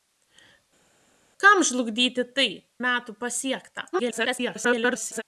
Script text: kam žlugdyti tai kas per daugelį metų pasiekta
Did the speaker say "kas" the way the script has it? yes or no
no